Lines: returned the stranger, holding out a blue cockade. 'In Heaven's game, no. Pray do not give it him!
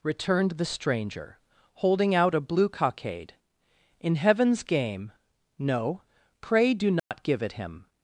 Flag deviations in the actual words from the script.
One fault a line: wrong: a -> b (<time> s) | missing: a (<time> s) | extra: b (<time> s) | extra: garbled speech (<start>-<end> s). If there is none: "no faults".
no faults